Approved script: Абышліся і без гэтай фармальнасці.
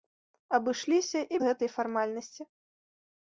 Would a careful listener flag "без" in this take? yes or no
yes